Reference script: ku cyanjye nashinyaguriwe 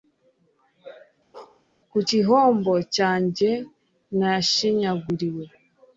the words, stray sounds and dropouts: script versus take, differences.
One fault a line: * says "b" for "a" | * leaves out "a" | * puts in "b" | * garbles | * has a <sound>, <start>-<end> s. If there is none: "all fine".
* has a bark, 1.3-1.6 s
* puts in "gihombo"